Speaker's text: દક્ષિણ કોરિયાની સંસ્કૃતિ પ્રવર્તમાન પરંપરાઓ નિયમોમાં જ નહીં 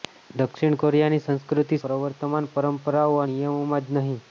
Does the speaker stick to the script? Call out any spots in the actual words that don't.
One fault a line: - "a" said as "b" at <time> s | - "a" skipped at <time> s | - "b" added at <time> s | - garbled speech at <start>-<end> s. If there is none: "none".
none